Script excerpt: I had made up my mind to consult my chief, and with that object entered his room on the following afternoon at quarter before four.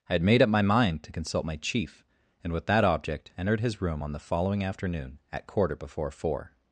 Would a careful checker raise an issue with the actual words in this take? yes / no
no